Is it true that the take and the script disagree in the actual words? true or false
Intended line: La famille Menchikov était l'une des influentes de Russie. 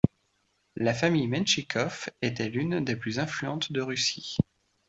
true